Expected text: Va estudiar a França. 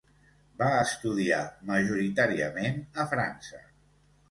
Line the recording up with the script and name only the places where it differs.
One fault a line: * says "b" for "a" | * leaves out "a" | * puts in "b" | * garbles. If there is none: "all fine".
* puts in "majoritàriament"